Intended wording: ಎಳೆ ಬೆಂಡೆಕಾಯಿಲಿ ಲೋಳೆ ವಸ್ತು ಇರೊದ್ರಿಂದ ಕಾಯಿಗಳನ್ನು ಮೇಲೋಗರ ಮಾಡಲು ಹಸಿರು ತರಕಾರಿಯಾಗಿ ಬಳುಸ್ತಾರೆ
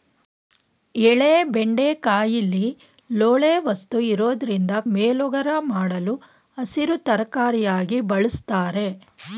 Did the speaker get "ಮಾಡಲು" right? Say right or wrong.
right